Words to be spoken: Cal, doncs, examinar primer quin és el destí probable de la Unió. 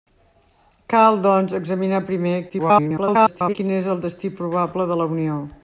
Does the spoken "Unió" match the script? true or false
true